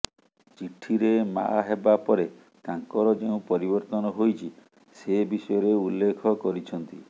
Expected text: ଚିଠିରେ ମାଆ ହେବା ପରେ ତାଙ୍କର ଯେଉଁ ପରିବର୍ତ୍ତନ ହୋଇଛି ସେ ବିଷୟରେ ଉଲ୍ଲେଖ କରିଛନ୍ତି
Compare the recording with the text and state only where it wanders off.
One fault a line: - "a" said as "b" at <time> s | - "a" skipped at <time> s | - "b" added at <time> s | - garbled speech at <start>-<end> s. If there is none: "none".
none